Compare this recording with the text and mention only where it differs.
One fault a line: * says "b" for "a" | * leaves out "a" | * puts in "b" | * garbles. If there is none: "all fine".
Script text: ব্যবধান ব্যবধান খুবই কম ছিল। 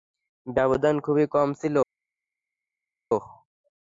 * leaves out "ব্যবধান"